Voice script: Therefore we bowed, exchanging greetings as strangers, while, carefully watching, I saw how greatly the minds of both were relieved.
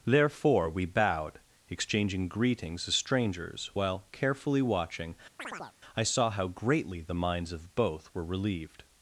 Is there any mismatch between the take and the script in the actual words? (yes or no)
no